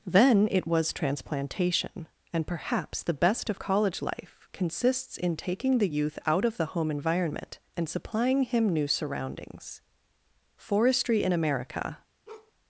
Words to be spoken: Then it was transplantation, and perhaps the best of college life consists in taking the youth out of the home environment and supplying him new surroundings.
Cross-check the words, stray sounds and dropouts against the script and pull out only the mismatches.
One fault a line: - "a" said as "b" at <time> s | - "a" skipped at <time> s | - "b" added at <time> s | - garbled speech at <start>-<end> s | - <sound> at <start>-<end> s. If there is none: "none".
- "Forestry in America" added at 10.6 s
- bark at 12.3-12.5 s